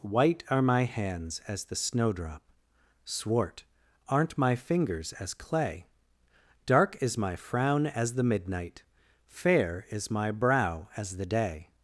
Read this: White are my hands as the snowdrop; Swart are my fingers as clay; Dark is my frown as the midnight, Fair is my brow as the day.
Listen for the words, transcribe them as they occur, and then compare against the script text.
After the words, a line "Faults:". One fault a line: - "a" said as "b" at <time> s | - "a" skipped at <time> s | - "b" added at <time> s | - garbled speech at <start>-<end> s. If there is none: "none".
White are my hands as the snowdrop; Swart aren't my fingers as clay; Dark is my frown as the midnight, Fair is my brow as the day.
Faults:
- "are" said as "aren't" at 4.1 s